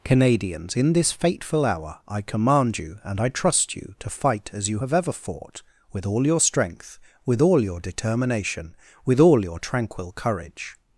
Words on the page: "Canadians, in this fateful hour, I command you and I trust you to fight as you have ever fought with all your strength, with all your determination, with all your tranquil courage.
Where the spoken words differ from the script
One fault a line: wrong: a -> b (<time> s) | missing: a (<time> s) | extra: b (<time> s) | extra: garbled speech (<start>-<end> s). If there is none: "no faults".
no faults